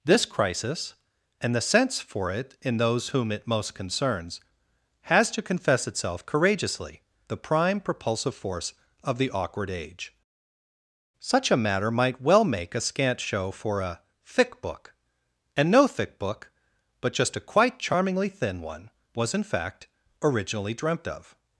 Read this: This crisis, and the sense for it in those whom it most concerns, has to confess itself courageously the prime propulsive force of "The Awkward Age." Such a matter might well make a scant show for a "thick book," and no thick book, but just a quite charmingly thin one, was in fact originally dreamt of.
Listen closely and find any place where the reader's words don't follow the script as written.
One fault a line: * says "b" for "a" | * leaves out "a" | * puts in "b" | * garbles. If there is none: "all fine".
all fine